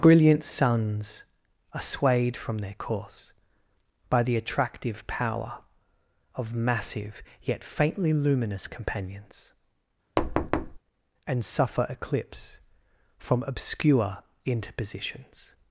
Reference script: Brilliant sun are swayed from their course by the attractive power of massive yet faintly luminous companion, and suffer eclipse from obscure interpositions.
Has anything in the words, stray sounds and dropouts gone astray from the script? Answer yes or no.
yes